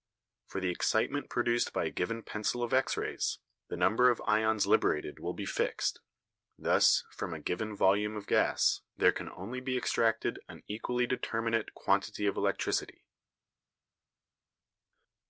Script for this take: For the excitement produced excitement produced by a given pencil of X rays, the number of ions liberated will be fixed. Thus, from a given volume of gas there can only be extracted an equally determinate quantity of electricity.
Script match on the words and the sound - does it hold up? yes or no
no